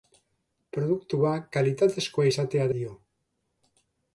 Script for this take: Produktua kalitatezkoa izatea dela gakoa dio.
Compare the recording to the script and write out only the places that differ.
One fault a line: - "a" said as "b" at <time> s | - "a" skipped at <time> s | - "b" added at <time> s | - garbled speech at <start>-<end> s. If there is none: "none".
- "dela gakoa" skipped at 2.7 s